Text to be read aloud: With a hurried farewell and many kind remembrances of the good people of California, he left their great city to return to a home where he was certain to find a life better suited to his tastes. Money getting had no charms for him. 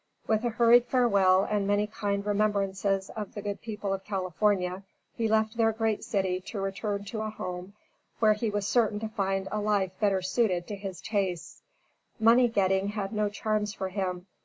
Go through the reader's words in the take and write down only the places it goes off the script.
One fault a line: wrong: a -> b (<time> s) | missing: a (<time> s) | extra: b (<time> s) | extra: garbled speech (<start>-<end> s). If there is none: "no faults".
no faults